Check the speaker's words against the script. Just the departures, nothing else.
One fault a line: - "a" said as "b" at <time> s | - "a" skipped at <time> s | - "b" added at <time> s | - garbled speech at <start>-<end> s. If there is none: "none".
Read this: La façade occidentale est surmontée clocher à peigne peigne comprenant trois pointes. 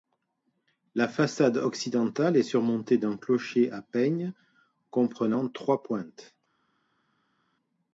- "d'un" added at 3.0 s
- "peigne" skipped at 4.3 s